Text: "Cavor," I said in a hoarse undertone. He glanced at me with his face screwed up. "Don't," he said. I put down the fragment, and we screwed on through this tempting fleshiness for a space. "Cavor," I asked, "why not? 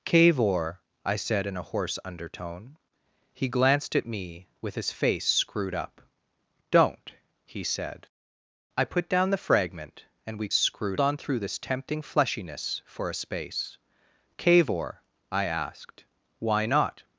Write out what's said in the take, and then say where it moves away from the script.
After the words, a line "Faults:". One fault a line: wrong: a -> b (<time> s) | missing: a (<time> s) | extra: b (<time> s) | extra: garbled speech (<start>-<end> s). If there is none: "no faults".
"Cavor," I said in a hoarse undertone. He glanced at me with his face screwed up. "Don't," he said. I put down the fragment, and we screwed on through this tempting fleshiness for a space. "Cavor," I asked, "why not?
Faults:
no faults